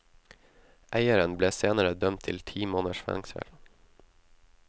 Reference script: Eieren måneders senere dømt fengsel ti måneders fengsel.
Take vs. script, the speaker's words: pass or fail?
fail